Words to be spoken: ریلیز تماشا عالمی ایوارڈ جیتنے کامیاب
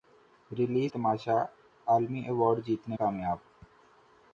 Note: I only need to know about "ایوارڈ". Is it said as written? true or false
true